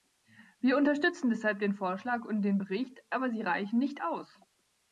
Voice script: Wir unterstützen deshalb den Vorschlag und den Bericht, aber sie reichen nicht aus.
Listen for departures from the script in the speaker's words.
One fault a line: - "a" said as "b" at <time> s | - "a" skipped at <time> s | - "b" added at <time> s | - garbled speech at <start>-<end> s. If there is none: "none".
none